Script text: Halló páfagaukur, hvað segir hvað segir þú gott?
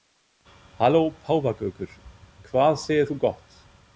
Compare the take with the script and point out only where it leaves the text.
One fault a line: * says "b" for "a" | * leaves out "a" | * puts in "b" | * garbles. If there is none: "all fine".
* leaves out "hvað segir"